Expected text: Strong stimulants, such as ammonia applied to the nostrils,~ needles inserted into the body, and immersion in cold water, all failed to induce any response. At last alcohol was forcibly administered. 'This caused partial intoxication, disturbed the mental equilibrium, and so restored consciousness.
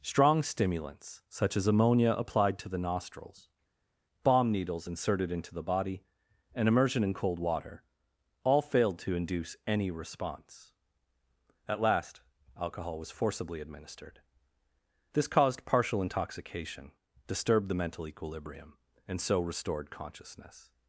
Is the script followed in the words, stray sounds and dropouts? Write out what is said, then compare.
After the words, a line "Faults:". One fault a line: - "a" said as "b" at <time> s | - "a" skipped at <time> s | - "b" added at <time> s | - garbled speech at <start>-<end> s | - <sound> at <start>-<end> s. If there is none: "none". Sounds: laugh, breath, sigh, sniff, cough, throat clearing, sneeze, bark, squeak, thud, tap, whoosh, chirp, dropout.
Strong stimulants, such as ammonia applied to the nostrils,~ bomb needles inserted into the body, and immersion in cold water, all failed to induce any response. At last alcohol was forcibly administered. 'This caused partial intoxication, disturbed the mental equilibrium, and so restored consciousness.
Faults:
- "bomb" added at 4.2 s